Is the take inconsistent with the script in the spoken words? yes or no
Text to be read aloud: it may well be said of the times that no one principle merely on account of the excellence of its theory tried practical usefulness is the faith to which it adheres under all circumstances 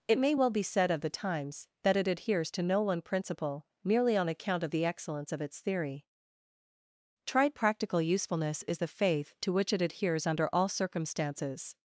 yes